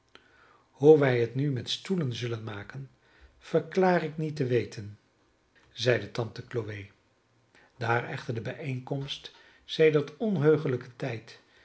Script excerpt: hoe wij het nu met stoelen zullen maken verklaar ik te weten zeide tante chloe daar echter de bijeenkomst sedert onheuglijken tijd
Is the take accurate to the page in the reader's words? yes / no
no